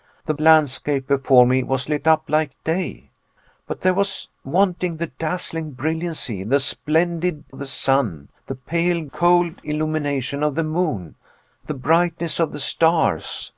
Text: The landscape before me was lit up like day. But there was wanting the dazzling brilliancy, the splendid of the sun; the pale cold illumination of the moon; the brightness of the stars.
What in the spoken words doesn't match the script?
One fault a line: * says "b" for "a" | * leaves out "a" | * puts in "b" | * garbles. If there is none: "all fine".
all fine